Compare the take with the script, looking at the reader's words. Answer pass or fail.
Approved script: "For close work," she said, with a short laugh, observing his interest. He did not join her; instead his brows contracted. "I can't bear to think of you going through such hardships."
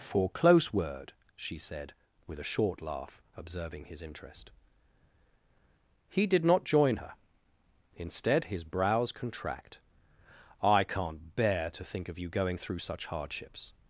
fail